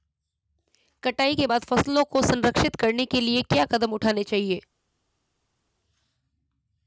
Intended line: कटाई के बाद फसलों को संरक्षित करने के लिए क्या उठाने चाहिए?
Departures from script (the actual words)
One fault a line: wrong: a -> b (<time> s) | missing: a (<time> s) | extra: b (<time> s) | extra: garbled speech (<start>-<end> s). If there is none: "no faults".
extra: कदम (3.6 s)